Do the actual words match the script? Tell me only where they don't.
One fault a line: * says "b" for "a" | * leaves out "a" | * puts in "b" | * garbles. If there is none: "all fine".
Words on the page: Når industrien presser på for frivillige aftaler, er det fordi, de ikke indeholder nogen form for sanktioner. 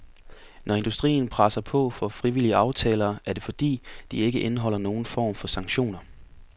all fine